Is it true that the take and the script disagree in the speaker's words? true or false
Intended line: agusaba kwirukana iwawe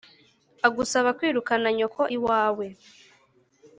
true